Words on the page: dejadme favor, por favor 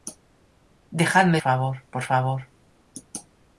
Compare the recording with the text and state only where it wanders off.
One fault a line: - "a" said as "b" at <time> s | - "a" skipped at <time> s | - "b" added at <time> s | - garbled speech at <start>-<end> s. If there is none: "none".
none